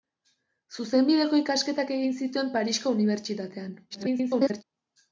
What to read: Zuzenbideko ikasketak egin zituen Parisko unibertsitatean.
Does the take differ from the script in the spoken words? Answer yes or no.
yes